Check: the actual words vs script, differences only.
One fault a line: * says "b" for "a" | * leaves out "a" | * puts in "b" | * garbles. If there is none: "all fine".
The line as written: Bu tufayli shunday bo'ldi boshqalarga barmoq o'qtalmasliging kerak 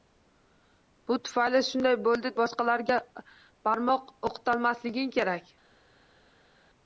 all fine